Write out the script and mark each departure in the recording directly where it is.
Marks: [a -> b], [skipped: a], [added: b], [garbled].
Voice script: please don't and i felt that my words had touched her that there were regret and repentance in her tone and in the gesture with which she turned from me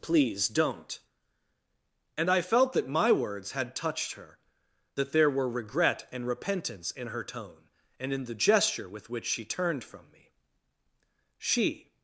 please don't and i felt that my words had touched her that there were regret and repentance in her tone and in the gesture with which she turned from me [added: she]